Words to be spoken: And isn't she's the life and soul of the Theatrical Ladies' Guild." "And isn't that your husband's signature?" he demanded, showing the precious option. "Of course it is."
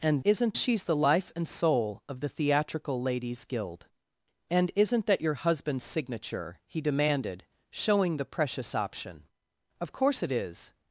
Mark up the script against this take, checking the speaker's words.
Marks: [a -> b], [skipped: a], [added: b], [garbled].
And isn't she's the life and soul of the Theatrical Ladies' Guild." "And isn't that your husband's signature?" he demanded, showing the precious option. "Of course it is."